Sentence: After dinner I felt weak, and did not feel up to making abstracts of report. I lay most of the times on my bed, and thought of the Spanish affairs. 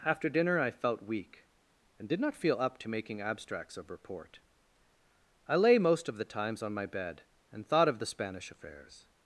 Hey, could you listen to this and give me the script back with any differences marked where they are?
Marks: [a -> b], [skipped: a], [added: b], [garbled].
After dinner I felt weak, and did not feel up to making abstracts of report. I lay most of the times on my bed, and thought of the Spanish affairs.